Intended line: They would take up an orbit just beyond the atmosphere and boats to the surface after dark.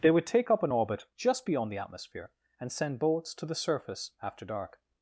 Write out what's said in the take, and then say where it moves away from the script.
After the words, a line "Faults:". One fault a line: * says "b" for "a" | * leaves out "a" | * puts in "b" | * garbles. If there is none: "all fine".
They would take up an orbit just beyond the atmosphere and send boats to the surface after dark.
Faults:
* puts in "send"